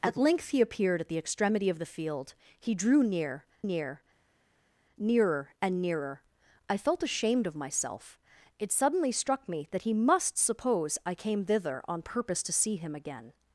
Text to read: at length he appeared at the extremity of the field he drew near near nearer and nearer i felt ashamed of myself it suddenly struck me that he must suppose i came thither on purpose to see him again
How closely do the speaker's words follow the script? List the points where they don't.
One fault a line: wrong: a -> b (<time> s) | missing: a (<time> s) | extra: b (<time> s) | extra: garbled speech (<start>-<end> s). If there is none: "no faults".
no faults